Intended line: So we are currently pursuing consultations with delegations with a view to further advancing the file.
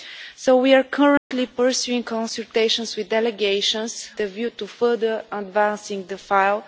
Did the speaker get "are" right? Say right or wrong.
right